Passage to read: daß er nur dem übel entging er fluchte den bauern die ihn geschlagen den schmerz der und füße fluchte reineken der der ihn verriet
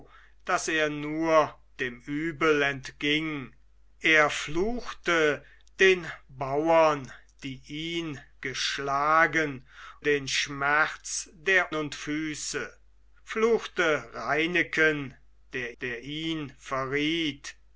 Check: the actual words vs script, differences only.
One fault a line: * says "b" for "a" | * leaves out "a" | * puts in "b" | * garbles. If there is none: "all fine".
all fine